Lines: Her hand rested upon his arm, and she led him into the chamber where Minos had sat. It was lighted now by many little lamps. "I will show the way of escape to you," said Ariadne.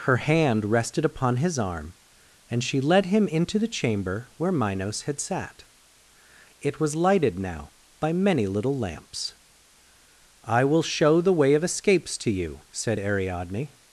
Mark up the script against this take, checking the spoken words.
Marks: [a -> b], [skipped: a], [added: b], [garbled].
Her hand rested upon his arm, and she led him into the chamber where Minos had sat. It was lighted now by many little lamps. "I will show the way of [escape -> escapes] to you," said Ariadne.